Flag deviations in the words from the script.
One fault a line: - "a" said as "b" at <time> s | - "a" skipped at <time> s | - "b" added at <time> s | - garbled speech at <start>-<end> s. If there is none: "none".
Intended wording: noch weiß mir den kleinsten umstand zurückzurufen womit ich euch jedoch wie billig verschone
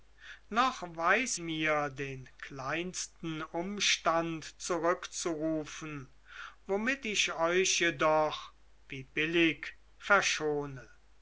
none